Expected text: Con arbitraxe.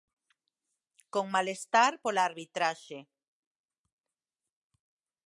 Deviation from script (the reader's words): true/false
true